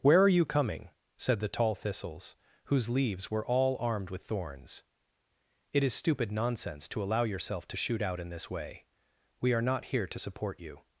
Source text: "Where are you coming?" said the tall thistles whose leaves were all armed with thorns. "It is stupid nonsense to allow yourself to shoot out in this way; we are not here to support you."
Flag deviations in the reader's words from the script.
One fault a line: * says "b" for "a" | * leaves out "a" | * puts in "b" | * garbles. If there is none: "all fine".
all fine